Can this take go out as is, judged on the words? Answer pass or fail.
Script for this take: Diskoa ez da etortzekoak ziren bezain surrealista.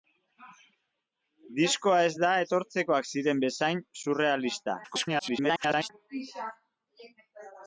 fail